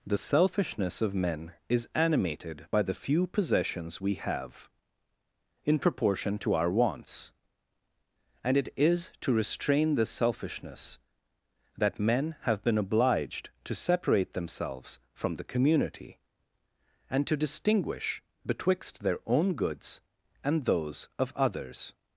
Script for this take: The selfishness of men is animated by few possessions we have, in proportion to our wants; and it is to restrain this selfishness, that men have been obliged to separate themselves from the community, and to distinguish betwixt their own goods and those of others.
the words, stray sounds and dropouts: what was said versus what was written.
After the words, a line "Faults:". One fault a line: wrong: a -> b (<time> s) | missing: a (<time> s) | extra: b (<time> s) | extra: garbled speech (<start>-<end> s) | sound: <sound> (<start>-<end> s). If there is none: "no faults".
The selfishness of men is animated by the few possessions we have, in proportion to our wants; and it is to restrain this selfishness, that men have been obliged to separate themselves from the community, and to distinguish betwixt their own goods and those of others.
Faults:
extra: the (2.8 s)